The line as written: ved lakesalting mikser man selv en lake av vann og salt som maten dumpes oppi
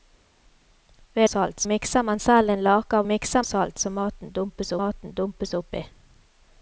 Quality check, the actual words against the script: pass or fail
fail